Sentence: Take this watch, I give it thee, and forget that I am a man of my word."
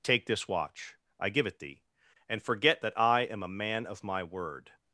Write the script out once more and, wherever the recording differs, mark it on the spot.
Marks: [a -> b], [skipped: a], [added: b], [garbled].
Take this watch, I give it thee, and forget that I am a man of my word."